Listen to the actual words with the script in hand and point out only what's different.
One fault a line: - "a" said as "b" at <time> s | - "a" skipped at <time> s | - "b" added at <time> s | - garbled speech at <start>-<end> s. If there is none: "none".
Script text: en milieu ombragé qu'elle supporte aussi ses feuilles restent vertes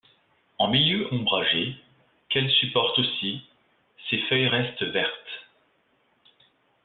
none